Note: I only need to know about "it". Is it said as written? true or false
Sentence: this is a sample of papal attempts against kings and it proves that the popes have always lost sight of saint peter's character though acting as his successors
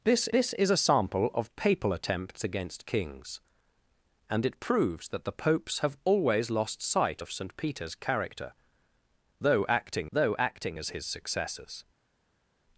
true